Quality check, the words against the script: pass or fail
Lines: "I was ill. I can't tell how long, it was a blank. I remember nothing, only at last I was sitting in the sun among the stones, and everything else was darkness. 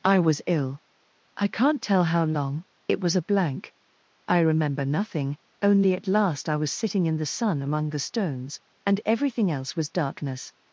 pass